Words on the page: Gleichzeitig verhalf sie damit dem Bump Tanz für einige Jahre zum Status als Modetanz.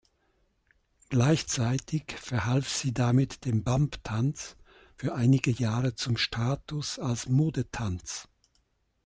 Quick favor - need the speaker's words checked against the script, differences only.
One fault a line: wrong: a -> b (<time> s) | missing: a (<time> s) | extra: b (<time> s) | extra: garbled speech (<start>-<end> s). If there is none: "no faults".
no faults